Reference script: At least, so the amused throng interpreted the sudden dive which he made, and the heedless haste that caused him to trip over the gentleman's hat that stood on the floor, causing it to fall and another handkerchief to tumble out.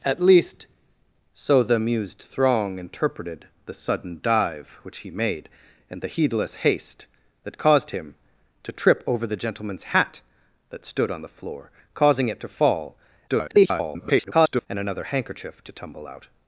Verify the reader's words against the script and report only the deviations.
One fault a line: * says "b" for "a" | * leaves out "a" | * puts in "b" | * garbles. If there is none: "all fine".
* garbles